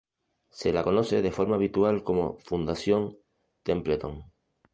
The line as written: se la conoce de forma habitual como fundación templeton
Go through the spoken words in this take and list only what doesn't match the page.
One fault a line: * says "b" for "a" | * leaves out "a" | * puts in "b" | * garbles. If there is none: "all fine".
all fine